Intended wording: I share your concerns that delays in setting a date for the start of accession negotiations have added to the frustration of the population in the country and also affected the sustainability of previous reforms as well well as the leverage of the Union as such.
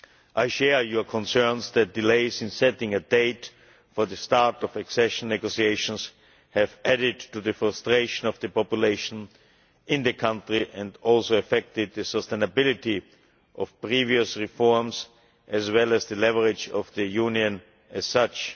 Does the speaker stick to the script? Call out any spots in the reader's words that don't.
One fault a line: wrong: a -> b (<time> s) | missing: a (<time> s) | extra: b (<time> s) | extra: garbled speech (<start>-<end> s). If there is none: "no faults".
missing: well (15.9 s)